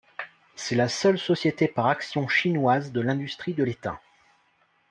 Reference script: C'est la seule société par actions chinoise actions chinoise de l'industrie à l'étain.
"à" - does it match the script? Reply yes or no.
no